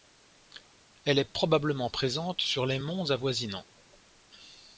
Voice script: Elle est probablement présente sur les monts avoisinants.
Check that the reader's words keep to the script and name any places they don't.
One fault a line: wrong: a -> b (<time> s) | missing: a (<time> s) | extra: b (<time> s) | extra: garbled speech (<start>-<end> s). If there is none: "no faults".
no faults